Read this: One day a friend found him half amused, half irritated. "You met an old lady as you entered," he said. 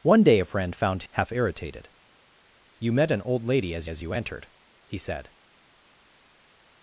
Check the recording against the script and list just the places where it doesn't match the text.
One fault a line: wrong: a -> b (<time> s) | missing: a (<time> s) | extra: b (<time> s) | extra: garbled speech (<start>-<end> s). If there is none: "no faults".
missing: him (1.0 s)
missing: amused half (1.3 s)
extra: as (3.9 s)